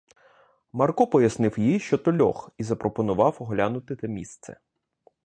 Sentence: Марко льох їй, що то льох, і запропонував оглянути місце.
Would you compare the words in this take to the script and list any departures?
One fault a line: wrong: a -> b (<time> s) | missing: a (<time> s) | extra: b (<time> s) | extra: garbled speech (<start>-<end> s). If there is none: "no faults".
wrong: льох -> пояснив (1.1 s)
extra: те (3.9 s)